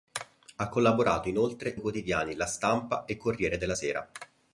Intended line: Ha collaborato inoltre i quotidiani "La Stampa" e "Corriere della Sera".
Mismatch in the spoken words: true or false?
false